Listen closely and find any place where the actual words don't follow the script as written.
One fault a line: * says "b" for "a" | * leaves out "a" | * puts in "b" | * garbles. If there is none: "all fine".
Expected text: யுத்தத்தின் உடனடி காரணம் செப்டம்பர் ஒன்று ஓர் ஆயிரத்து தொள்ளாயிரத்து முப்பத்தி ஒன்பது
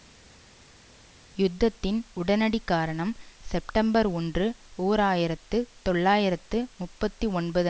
all fine